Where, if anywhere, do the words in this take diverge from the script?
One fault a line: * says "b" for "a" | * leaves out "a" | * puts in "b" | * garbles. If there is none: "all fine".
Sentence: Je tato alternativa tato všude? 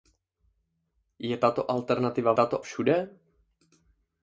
all fine